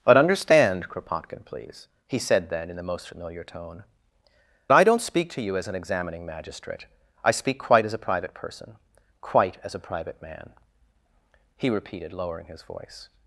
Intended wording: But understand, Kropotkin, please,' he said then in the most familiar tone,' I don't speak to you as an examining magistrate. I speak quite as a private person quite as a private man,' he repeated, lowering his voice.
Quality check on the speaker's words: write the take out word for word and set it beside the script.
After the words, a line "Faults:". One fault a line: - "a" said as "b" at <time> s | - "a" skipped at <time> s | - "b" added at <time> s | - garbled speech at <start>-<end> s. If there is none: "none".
But understand, Kropotkin, please,' he said then in the most familiar tone,' I don't speak to you as an examining magistrate. I speak quite as a private person quite as a private man,' he repeated, lowering his voice.
Faults:
none